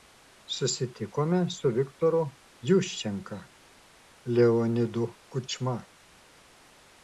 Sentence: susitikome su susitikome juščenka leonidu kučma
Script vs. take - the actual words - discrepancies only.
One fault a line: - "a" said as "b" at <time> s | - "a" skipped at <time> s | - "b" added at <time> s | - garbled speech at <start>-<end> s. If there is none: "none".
- "susitikome" said as "viktoru" at 1.8 s